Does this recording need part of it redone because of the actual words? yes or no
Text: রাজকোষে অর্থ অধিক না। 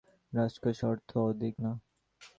no